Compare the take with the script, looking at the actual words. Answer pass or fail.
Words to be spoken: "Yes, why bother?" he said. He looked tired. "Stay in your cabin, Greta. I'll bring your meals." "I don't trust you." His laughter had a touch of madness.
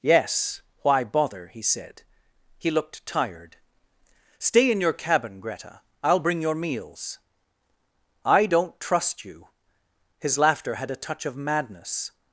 pass